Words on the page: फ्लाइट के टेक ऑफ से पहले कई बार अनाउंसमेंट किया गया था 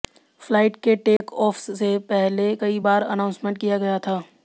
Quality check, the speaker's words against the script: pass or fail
pass